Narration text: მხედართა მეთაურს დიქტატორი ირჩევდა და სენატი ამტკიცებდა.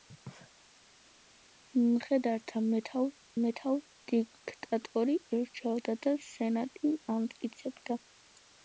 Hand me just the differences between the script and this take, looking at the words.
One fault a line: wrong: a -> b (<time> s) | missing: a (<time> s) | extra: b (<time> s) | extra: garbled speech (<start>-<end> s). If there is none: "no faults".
extra: მეთაურს (3.4 s)